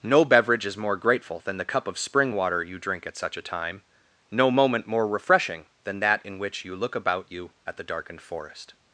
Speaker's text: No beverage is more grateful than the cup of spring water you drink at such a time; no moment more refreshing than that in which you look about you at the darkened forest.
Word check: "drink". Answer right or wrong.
right